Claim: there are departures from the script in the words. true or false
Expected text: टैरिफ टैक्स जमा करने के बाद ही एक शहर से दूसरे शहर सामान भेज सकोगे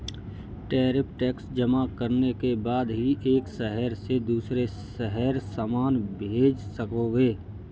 false